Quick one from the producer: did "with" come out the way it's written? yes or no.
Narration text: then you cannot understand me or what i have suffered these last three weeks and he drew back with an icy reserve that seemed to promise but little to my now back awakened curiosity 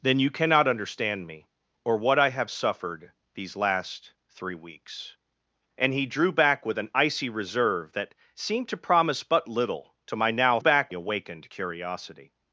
yes